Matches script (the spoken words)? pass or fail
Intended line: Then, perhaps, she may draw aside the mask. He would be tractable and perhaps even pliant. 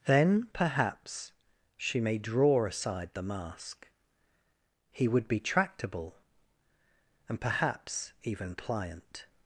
pass